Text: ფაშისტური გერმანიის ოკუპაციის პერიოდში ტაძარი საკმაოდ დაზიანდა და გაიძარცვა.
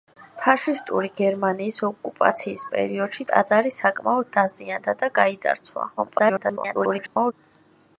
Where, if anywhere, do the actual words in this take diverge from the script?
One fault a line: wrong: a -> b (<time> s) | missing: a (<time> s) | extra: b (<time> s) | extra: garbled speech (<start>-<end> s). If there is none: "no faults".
extra: garbled speech (6.0-7.3 s)